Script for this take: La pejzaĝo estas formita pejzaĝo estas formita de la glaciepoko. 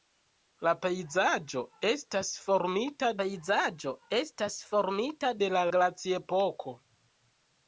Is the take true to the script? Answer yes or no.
yes